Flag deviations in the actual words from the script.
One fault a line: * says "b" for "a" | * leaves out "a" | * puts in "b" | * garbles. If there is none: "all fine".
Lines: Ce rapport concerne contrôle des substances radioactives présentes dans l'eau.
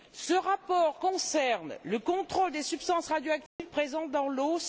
* puts in "le"